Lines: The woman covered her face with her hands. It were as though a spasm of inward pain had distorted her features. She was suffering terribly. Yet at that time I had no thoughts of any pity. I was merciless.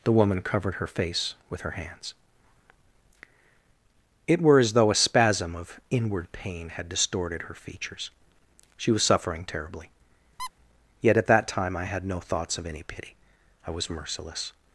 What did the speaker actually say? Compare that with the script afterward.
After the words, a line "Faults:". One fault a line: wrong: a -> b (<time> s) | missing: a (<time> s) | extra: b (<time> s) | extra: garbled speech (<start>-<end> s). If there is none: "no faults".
The woman covered her face with her hands. It were as though a spasm of inward pain had distorted her features. She was suffering terribly. Yet at that time I had no thoughts of any pity. I was merciless.
Faults:
no faults